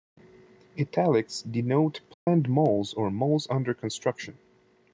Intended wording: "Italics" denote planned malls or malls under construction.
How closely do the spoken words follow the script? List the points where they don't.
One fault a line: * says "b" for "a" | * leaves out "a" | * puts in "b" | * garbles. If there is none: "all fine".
all fine